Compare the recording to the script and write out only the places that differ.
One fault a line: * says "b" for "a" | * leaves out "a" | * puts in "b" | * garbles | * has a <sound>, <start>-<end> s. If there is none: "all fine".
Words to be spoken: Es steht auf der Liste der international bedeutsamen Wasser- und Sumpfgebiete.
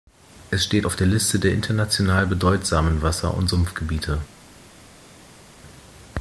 all fine